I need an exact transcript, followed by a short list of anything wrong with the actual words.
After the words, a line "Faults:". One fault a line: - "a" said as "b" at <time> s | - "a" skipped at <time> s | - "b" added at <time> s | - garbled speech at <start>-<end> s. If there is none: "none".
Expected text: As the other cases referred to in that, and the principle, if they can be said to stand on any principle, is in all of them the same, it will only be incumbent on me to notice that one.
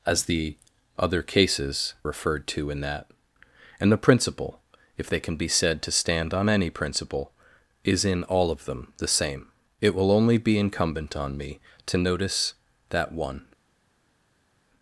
As the other cases referred to in that, and the principle, if they can be said to stand on any principle, is in all of them the same, it will only be incumbent on me to notice that one.
Faults:
none